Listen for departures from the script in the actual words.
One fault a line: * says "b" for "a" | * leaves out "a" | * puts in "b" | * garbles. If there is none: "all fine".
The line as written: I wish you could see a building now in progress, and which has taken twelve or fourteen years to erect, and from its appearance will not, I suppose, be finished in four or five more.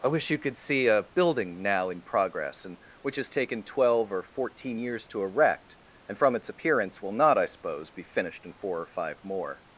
all fine